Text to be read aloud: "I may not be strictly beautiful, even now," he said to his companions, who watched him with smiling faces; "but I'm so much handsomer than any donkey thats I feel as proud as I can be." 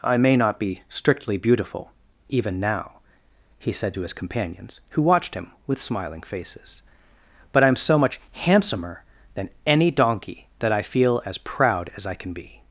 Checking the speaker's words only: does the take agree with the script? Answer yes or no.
no